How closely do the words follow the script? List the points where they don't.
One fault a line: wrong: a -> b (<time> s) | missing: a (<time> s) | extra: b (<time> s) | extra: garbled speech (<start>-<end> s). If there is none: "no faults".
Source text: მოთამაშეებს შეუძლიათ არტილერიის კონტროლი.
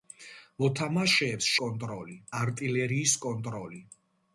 wrong: შეუძლიათ -> კონტროლი (1.7 s)